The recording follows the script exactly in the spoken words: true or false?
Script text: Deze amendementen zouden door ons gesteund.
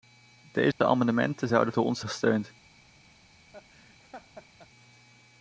true